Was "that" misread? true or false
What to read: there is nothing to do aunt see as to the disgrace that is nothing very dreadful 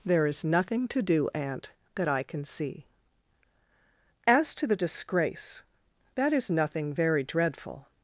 false